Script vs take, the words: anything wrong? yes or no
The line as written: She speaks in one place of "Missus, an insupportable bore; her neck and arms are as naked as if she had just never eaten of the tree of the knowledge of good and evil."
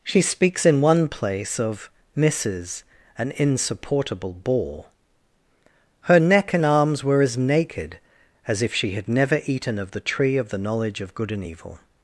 yes